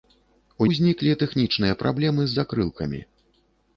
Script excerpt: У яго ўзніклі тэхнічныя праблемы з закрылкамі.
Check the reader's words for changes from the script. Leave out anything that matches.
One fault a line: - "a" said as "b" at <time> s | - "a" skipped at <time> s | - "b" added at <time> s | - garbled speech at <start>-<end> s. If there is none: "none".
- "яго" skipped at 0.7 s